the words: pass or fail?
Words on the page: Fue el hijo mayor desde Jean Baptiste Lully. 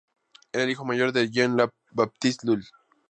fail